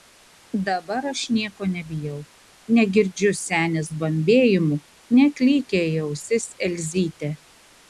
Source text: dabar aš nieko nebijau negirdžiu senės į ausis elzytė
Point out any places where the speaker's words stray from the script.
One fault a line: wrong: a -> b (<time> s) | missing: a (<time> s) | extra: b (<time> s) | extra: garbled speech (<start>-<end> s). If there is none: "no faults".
extra: bambėjimų neklykia (4.0 s)